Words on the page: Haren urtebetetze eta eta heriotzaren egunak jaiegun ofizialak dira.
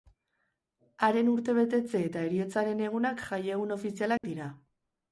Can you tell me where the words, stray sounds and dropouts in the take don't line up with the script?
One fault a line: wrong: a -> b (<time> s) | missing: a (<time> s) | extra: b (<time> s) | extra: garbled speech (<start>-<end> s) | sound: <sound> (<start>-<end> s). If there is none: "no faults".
missing: eta (2.2 s)
sound: dropout (4.2-4.2 s)